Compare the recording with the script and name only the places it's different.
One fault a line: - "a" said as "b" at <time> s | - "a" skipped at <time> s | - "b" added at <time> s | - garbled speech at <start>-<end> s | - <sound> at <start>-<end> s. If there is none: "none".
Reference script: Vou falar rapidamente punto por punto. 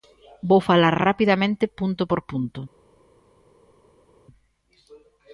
none